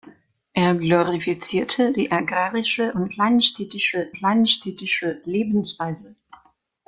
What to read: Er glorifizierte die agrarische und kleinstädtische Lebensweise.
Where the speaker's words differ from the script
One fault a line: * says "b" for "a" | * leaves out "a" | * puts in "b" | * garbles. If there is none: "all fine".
* puts in "kleinstädtische"